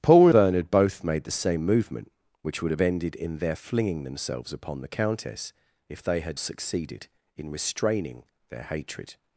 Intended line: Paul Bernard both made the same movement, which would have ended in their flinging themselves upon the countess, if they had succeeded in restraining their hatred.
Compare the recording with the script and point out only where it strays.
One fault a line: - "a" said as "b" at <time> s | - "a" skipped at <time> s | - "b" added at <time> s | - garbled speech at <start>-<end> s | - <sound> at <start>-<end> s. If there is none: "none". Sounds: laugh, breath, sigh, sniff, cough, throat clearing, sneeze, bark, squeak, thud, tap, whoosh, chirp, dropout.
none